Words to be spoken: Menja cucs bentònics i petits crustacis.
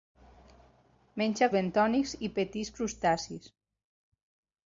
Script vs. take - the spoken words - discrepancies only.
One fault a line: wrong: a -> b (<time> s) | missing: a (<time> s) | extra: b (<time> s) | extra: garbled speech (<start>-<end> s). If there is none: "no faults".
missing: cucs (1.5 s)